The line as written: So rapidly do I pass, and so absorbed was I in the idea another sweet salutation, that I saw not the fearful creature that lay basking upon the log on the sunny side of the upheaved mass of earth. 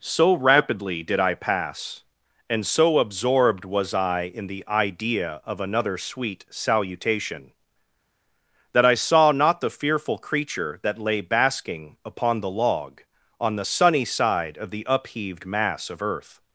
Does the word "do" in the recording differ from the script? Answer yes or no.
yes